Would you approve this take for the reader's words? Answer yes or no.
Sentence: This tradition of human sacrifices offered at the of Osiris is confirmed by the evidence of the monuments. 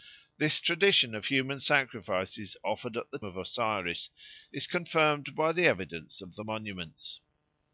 yes